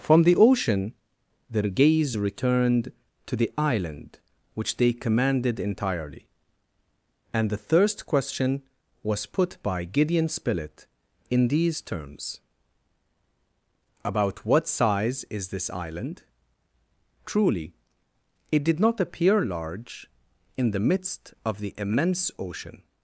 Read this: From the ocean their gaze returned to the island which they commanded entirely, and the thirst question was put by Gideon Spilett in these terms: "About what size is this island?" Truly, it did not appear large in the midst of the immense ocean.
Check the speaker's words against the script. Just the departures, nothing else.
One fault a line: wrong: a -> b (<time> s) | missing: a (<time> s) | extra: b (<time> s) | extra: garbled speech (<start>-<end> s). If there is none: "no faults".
no faults